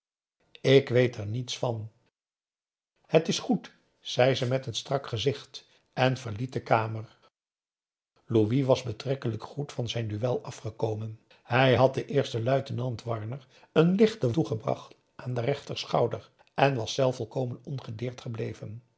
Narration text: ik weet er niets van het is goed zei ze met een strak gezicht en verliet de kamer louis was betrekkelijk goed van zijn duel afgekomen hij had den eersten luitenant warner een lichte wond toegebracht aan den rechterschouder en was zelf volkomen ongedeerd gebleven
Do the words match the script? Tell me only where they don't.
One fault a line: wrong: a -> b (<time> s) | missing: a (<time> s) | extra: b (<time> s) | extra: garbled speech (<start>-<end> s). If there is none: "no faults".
missing: wond (14.3 s)